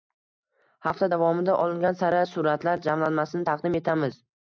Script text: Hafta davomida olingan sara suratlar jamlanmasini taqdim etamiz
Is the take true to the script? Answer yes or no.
yes